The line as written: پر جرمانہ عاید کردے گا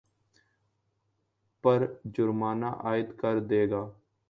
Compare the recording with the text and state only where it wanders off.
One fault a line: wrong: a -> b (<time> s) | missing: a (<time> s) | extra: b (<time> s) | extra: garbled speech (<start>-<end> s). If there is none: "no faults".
no faults